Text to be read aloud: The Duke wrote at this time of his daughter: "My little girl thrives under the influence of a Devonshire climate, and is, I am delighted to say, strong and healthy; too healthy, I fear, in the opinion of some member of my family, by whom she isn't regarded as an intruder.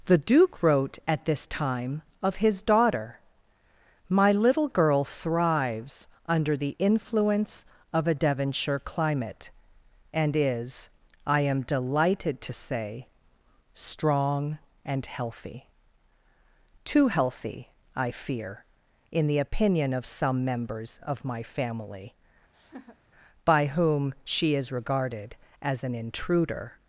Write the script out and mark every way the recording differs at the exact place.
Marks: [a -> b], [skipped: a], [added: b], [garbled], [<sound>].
The Duke wrote at this time of his daughter: "My little girl thrives under the influence of a Devonshire climate, and is, I am delighted to say, strong and healthy; too healthy, I fear, in the opinion of some [member -> members] of my family, [laugh] by whom she [isn't -> is] regarded as an intruder.